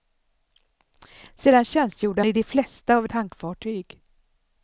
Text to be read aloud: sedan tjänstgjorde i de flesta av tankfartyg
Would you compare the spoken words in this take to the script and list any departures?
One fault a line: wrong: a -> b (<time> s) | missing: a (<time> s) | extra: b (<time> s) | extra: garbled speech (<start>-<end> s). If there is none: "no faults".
no faults